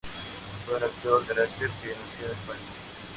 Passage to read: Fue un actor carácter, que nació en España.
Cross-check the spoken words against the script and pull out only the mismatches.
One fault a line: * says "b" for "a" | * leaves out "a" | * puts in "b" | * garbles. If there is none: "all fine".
all fine